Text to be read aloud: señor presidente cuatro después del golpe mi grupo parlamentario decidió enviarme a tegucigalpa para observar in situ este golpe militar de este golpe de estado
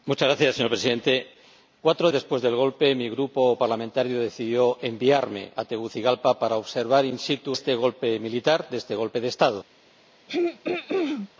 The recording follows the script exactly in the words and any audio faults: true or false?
false